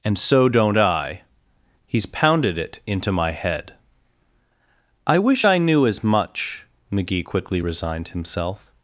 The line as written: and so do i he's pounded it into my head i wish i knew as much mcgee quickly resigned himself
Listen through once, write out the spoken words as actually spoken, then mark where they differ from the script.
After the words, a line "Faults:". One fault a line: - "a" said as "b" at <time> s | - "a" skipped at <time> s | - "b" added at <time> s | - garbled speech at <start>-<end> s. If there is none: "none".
and so don't i he's pounded it into my head i wish i knew as much mcgee quickly resigned himself
Faults:
- "do" said as "don't" at 0.5 s